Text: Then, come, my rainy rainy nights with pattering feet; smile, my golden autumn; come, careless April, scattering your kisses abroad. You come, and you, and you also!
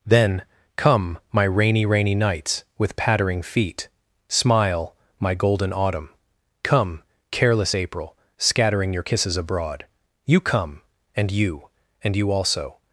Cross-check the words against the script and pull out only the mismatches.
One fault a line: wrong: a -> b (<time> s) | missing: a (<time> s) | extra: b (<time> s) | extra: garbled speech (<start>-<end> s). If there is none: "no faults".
no faults